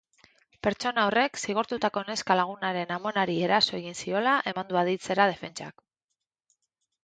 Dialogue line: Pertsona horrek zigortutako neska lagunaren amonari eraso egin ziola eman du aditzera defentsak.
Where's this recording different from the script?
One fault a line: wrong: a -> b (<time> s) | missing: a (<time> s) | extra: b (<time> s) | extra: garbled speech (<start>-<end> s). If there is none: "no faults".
no faults